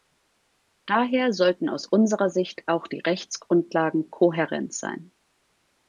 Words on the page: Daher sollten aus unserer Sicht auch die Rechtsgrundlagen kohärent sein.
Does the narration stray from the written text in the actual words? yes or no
no